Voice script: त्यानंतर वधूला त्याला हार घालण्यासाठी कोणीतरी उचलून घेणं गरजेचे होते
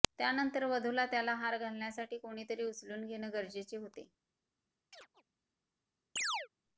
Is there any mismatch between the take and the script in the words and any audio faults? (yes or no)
yes